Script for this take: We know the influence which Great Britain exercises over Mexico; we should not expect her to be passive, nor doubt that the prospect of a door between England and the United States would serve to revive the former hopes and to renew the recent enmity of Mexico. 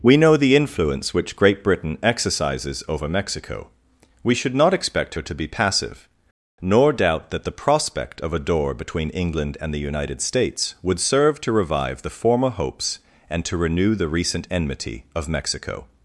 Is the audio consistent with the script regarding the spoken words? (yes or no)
yes